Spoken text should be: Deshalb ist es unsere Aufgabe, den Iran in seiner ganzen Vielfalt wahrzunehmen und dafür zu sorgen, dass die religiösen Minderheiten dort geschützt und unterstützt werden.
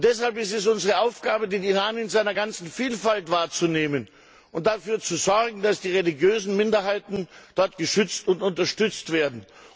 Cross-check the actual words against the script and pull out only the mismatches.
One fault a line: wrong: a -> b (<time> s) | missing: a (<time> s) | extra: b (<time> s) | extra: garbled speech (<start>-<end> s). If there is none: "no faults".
no faults